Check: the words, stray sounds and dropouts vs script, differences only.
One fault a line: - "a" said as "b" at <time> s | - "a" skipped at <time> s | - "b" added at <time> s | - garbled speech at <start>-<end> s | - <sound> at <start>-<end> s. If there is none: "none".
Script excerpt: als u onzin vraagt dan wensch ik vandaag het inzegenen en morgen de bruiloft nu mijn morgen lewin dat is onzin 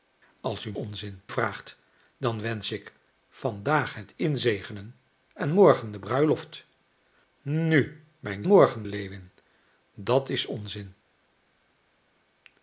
none